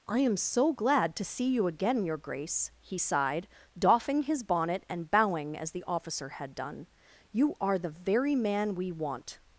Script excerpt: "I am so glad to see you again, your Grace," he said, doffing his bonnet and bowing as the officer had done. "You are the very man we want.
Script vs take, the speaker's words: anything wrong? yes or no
yes